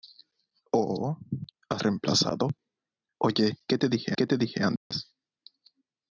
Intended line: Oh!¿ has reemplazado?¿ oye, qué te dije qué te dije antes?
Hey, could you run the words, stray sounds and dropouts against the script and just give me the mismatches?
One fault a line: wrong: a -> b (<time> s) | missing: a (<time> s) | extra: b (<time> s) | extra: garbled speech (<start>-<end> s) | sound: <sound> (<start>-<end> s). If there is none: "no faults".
sound: dropout (4.8-4.9 s)